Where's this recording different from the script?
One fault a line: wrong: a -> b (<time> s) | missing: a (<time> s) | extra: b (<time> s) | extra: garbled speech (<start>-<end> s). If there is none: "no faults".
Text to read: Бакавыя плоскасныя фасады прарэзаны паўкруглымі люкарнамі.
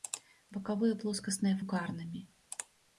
missing: фасады прарэзаны паўкруглымі (1.6 s)